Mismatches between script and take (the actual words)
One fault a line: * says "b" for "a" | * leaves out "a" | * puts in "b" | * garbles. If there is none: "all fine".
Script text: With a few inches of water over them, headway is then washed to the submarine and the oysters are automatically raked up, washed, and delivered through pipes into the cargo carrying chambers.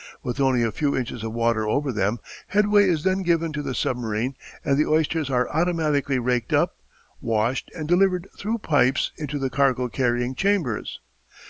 * puts in "only"
* says "given" for "washed"